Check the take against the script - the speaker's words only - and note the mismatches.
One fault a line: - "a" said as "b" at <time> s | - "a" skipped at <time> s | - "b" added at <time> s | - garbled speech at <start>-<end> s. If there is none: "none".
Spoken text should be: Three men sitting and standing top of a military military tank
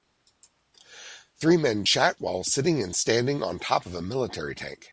- "chat while" added at 1.8 s
- "on" added at 3.4 s
- "military" skipped at 4.5 s